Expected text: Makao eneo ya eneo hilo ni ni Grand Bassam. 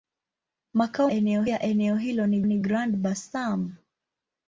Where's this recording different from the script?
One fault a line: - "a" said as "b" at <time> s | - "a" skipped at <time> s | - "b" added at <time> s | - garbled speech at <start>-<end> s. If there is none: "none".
none